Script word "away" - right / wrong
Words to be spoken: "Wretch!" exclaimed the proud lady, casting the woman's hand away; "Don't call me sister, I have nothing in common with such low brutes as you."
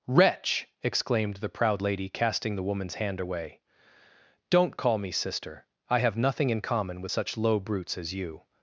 right